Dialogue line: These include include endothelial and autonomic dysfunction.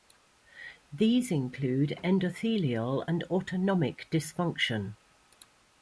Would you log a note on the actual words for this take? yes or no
yes